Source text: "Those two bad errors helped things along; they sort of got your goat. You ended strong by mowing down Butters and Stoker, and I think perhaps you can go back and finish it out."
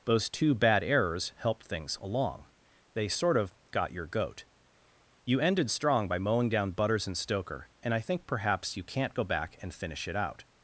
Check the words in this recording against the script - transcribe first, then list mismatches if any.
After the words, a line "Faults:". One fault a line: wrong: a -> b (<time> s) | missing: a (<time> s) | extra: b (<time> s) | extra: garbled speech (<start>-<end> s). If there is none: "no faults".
"Those two bad errors helped things along; they sort of got your goat. You ended strong by mowing down Butters and Stoker, and I think perhaps you can't go back and finish it out."
Faults:
wrong: can -> can't (8.8 s)